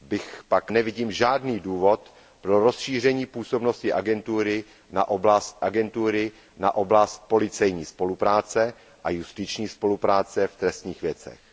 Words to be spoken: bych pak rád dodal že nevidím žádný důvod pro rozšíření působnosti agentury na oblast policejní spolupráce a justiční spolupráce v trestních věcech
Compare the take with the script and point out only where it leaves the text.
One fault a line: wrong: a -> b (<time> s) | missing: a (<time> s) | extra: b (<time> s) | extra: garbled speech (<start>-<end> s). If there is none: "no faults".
missing: rád dodal že (0.7 s)
extra: agentury na oblast (5.6 s)